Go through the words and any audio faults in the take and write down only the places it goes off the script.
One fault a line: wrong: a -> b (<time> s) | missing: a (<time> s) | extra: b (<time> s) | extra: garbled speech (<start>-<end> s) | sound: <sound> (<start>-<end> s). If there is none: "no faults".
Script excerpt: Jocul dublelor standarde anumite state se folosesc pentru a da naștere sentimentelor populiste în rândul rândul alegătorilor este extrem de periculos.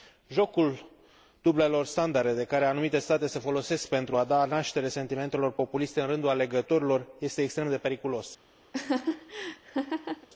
extra: de care (2.3 s)
missing: rândul (6.3 s)
sound: laugh (8.7-10.3 s)